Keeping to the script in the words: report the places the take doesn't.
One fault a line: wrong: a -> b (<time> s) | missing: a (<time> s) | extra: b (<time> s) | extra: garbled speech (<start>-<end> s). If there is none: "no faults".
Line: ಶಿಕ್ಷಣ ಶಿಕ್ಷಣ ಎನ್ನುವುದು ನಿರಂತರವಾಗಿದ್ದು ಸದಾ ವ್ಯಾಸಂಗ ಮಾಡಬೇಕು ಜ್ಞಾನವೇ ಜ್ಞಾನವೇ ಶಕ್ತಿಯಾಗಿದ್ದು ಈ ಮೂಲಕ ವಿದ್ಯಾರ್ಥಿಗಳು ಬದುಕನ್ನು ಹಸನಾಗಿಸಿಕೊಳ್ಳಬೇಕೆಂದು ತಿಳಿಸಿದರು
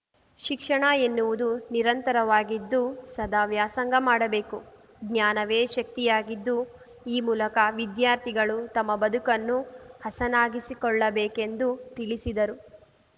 missing: ಶಿಕ್ಷಣ (0.8 s)
missing: ಜ್ಞಾನವೇ (5.6 s)
extra: ತಮ್ಮ (8.8 s)